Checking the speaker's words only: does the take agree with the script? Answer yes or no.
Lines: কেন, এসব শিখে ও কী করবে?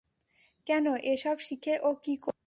yes